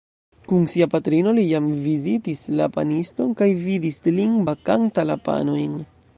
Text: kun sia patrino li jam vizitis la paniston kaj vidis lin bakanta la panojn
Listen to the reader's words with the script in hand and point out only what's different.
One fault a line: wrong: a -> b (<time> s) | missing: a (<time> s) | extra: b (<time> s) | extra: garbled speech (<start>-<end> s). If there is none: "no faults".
no faults